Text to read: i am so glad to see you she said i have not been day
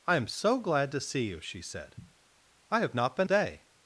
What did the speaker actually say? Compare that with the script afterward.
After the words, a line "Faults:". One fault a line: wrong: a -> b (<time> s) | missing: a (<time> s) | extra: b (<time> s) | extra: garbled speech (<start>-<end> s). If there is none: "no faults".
i am so glad to see you she said i have not been day
Faults:
no faults